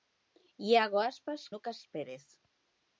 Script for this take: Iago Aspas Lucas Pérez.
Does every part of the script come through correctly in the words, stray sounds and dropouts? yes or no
yes